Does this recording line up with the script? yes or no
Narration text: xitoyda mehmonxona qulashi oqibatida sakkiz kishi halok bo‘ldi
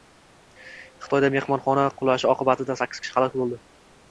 yes